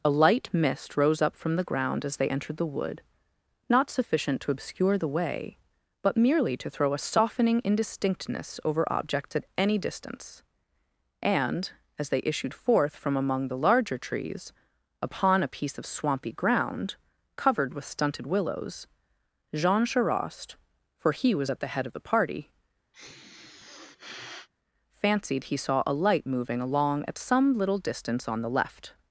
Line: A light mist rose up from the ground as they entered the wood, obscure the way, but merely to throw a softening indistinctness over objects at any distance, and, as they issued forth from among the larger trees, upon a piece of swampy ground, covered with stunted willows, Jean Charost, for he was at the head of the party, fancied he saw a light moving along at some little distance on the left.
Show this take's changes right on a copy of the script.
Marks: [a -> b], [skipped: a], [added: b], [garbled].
A light mist rose up from the ground as they entered the wood, [added: not sufficient to] obscure the way, but merely to throw a softening indistinctness over objects at any distance, and, as they issued forth from among the larger trees, upon a piece of swampy ground, covered with stunted willows, Jean Charost, for he was at the head of the party, fancied he saw a light moving along at some little distance on the left.